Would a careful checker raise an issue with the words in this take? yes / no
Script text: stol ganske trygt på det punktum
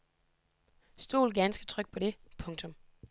no